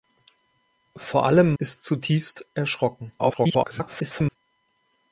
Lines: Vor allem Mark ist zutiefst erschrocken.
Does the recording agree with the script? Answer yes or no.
no